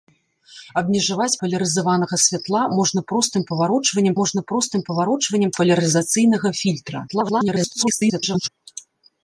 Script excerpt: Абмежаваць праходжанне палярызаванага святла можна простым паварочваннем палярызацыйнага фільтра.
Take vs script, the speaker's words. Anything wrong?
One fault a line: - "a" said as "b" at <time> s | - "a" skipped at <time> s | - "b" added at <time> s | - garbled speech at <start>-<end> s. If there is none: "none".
- "праходжанне" skipped at 1.4 s
- "можна простым паварочваннем" added at 4.2 s
- garbled speech at 7.1-8.5 s